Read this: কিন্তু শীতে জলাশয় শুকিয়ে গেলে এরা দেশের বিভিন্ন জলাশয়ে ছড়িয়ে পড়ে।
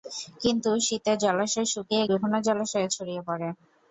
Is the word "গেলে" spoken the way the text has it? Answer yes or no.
no